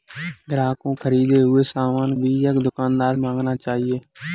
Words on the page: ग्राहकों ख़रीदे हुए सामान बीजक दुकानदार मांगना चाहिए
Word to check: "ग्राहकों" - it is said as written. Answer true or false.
true